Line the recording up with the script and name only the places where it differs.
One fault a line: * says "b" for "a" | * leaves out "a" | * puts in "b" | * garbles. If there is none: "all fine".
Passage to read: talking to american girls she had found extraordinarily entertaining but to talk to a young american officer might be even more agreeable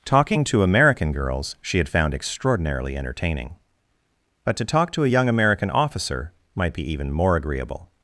all fine